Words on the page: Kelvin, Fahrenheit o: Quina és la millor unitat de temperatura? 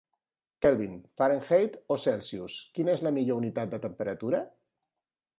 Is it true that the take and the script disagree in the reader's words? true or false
true